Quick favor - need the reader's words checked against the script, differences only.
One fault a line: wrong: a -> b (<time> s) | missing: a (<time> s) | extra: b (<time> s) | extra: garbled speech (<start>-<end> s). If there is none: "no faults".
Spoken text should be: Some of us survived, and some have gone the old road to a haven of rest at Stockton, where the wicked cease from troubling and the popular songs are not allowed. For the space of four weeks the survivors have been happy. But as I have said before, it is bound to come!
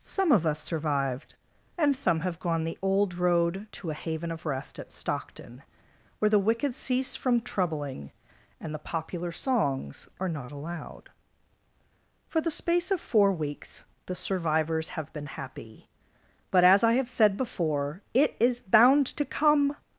no faults